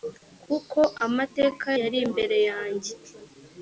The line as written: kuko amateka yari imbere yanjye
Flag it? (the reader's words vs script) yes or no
no